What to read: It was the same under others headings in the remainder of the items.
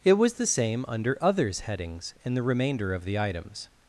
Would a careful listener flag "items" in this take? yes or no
no